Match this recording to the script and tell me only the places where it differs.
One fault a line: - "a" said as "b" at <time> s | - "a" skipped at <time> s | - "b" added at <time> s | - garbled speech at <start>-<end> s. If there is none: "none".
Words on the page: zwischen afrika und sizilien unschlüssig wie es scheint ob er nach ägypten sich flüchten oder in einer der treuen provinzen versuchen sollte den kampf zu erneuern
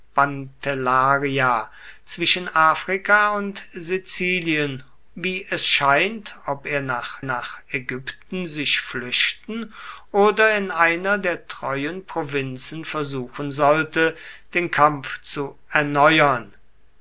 - "unschlüssig" skipped at 4.8 s
- "nach" added at 7.2 s